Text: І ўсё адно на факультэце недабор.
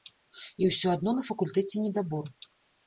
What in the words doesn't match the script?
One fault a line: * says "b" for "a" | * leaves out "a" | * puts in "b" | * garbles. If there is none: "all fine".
all fine